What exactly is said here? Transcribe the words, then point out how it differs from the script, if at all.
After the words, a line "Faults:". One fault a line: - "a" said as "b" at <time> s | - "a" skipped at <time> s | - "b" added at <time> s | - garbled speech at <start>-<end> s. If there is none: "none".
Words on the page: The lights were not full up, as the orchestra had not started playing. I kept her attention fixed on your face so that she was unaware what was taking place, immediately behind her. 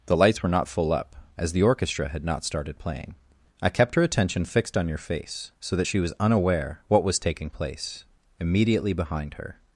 The lights were not full up, as the orchestra had not started playing. I kept her attention fixed on your face so that she was unaware what was taking place, immediately behind her.
Faults:
none